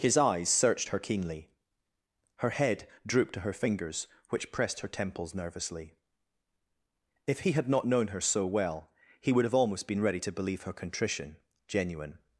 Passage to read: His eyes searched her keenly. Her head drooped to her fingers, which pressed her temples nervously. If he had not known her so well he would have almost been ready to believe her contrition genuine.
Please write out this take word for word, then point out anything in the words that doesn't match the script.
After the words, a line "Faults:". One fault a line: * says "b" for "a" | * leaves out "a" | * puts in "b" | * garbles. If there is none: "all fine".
His eyes searched her keenly. Her head drooped to her fingers, which pressed her temples nervously. If he had not known her so well he would have almost been ready to believe her contrition genuine.
Faults:
all fine